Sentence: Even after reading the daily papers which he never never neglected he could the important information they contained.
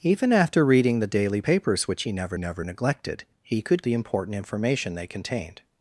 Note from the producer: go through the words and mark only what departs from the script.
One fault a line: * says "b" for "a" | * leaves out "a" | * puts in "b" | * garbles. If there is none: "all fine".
all fine